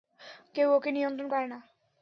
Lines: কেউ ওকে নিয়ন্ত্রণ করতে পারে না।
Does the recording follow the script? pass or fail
fail